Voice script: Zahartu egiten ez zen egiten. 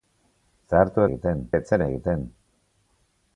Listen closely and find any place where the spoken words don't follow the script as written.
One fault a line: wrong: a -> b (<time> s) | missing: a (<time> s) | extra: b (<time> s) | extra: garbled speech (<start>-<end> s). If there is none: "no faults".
no faults